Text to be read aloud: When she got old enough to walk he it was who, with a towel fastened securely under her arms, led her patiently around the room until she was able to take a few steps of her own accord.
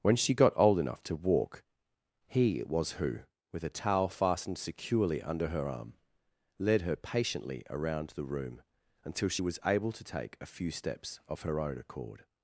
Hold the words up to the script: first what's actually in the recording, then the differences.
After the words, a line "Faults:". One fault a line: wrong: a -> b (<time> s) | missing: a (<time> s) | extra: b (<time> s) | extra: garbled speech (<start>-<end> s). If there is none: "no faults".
When she got old enough to walk he it was who, with a towel fastened securely under her arm, led her patiently around the room until she was able to take a few steps of her own accord.
Faults:
wrong: arms -> arm (5.7 s)